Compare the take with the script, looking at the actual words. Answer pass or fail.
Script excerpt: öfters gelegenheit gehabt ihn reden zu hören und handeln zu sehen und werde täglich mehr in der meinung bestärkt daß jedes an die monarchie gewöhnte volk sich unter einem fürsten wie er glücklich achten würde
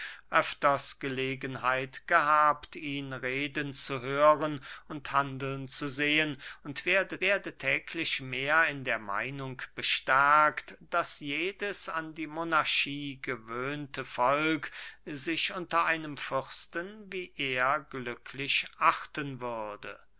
fail